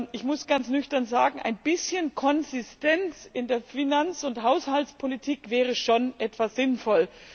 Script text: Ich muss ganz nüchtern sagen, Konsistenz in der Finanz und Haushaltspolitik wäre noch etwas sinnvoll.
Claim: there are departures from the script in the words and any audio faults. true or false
true